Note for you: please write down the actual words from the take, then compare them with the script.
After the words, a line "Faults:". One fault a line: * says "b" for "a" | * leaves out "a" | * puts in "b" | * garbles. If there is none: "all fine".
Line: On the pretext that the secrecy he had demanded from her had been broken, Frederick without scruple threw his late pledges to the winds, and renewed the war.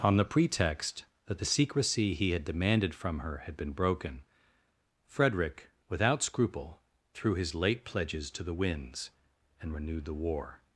On the pretext that the secrecy he had demanded from her had been broken, Frederick without scruple threw his late pledges to the winds, and renewed the war.
Faults:
all fine